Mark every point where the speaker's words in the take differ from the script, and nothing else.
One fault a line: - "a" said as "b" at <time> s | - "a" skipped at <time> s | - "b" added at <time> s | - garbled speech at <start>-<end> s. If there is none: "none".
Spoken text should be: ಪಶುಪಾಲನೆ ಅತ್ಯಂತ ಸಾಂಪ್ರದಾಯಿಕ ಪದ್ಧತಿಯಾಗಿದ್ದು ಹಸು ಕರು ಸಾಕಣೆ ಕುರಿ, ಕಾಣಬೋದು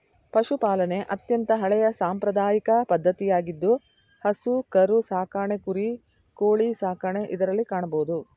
- "ಹಳೆಯ" added at 1.6 s
- "ಕೋಳಿ ಸಾಕಣೆ ಇದರಲ್ಲಿ" added at 6.4 s